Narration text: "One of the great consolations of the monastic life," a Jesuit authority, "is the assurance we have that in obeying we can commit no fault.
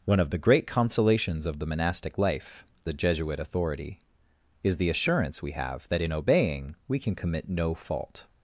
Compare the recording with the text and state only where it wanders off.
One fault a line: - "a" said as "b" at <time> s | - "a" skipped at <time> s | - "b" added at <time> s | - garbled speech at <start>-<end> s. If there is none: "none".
none